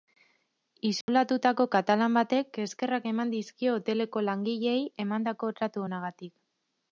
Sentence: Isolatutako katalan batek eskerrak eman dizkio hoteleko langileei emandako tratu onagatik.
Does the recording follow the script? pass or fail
pass